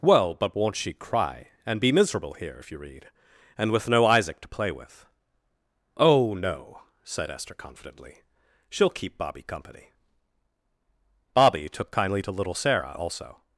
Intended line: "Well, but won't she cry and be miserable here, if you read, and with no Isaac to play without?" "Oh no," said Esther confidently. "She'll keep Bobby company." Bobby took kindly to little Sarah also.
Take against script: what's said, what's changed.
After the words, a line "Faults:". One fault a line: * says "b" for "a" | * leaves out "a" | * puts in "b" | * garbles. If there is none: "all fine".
"Well, but won't she cry and be miserable here, if you read, and with no Isaac to play with?" "Oh no," said Esther confidently. "She'll keep Bobby company." Bobby took kindly to little Sarah also.
Faults:
* says "with" for "without"